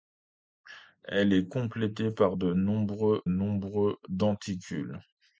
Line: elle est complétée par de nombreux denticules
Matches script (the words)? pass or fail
fail